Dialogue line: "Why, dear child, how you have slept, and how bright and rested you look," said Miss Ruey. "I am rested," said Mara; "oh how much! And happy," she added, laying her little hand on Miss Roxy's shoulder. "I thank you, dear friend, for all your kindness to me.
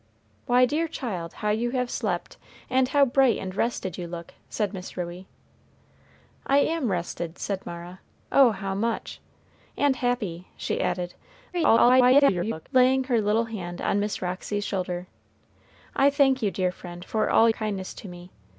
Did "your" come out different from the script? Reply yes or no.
yes